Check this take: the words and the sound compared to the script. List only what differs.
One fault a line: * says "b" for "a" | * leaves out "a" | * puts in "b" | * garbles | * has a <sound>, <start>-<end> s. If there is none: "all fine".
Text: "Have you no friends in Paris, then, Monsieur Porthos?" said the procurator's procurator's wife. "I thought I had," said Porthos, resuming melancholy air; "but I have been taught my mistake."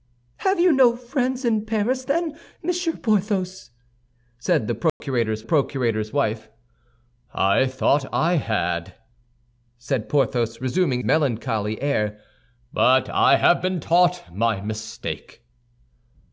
* has a dropout, 4.9-5.0 s